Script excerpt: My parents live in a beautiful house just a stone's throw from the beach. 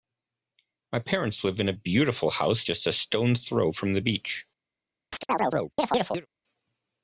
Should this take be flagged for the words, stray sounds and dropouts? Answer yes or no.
yes